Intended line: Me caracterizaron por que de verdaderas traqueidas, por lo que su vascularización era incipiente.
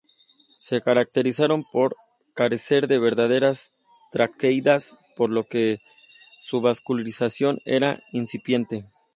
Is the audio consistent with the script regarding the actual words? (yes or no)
no